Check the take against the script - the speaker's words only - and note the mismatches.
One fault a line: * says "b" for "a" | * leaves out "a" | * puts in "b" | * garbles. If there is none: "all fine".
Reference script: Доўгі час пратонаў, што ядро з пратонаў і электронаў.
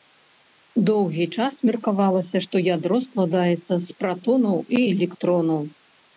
* says "меркавалася" for "пратонаў"
* puts in "складаецца"